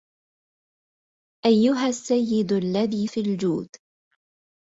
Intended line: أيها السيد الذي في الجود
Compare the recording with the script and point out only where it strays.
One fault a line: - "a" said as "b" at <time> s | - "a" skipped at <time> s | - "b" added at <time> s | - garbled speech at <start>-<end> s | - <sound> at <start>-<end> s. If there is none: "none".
none